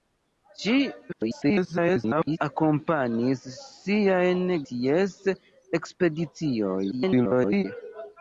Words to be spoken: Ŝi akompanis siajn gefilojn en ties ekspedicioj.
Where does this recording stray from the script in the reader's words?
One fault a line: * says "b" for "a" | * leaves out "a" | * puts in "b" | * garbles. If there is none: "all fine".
* garbles
* leaves out "gefilojn en"
* garbles